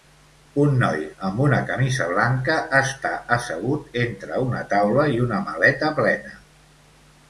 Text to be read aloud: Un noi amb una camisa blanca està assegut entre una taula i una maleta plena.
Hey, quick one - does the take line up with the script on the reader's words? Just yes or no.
yes